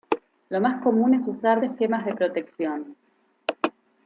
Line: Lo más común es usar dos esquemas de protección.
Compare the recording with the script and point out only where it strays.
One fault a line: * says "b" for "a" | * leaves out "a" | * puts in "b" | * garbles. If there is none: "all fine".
* leaves out "dos"